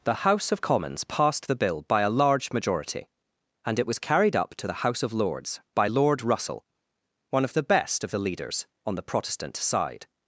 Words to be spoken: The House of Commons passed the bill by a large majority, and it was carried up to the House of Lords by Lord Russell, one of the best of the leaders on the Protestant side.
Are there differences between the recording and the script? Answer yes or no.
no